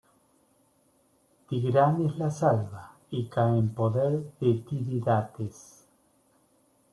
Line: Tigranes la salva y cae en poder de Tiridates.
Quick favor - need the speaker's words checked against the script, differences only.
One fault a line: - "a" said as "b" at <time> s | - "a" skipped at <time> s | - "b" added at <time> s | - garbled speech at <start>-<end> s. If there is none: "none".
none